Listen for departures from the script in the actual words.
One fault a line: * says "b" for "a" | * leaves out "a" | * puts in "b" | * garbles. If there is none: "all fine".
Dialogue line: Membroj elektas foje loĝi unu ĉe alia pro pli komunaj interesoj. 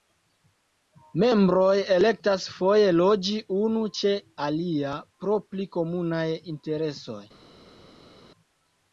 all fine